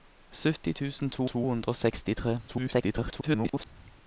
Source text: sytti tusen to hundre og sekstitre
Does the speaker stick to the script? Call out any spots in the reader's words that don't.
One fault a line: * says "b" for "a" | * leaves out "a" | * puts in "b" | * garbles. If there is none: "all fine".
* puts in "to"
* garbles